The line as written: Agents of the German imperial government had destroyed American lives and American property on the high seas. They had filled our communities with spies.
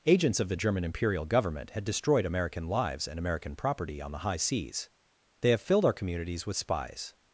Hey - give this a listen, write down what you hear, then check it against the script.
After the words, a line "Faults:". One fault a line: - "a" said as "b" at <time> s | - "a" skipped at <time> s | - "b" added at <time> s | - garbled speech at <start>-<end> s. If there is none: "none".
Agents of the German imperial government had destroyed American lives and American property on the high seas. They have filled our communities with spies.
Faults:
- "had" said as "have" at 5.5 s